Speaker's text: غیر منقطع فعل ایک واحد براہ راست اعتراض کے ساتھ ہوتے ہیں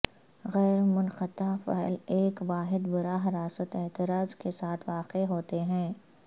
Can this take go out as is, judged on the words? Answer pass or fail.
fail